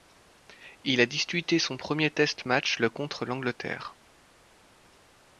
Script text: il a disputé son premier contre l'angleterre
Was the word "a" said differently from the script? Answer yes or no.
no